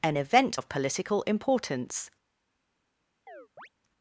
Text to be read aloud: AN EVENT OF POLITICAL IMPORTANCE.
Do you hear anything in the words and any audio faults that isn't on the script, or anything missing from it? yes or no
yes